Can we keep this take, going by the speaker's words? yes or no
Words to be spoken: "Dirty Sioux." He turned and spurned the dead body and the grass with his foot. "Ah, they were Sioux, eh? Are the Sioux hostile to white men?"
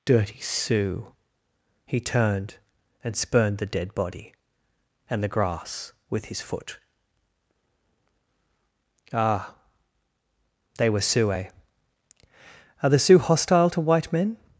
yes